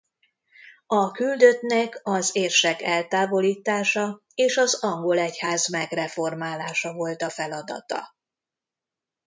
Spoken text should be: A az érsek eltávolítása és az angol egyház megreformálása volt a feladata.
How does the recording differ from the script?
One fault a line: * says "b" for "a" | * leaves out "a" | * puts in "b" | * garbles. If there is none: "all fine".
* puts in "küldöttnek"